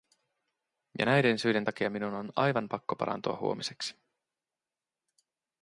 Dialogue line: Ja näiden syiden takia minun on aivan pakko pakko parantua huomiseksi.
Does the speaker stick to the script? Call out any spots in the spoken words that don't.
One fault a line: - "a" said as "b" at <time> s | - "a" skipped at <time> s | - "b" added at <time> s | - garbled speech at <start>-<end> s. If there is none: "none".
- "pakko" skipped at 3.0 s